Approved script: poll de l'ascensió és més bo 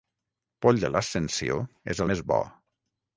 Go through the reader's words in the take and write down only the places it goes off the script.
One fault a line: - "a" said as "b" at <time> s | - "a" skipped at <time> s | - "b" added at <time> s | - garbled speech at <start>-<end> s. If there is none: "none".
none